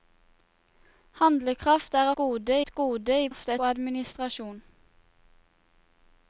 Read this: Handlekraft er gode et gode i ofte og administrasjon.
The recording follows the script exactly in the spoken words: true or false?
true